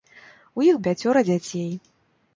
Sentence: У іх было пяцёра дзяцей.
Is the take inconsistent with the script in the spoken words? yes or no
yes